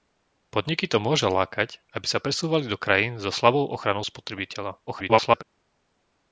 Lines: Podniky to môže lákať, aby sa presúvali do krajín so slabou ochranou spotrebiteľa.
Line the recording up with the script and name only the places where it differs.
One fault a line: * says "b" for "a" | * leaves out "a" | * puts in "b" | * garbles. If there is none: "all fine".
* garbles